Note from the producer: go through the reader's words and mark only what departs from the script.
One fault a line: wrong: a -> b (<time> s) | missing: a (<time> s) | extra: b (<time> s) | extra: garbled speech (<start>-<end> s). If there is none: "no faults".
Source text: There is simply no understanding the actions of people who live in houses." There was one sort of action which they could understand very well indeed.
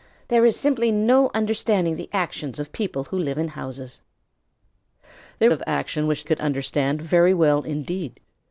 missing: was one sort (5.5 s)
missing: they (6.2 s)